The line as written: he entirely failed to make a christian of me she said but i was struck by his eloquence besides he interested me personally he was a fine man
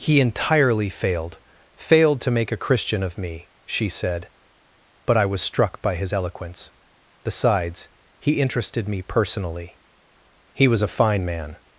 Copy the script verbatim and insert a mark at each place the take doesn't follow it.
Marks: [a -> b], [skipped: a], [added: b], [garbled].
he entirely failed [added: failed] to make a christian of me she said but i was struck by his eloquence besides he interested me personally he was a fine man